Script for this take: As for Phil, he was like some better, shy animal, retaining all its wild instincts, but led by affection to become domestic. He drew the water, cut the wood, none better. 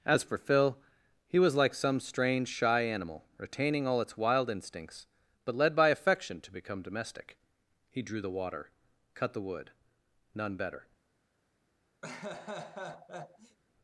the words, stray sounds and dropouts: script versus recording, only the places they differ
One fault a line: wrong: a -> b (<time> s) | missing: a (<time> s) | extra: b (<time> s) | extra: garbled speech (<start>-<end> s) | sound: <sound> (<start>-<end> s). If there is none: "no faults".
wrong: better -> strange (2.0 s)
sound: laugh (12.0-13.6 s)